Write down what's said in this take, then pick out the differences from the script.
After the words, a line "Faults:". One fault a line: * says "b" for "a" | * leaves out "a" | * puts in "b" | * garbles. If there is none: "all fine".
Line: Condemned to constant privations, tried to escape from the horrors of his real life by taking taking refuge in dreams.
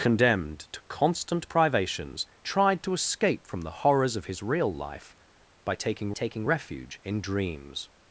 Condemned to constant privations, tried to escape from the horrors of his real life by taking taking refuge in dreams.
Faults:
all fine